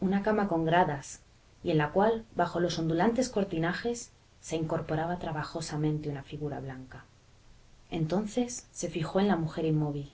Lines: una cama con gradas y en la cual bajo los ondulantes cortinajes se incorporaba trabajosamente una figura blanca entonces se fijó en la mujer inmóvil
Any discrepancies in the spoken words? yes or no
no